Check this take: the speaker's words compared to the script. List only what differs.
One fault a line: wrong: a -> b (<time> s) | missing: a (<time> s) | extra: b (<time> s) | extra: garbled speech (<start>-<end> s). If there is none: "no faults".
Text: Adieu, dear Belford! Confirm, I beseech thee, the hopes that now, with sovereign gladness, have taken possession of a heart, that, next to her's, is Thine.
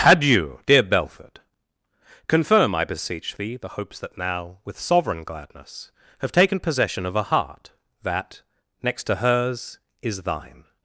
no faults